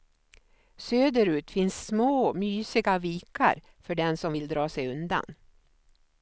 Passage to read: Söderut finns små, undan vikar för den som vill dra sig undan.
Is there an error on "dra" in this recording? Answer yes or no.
no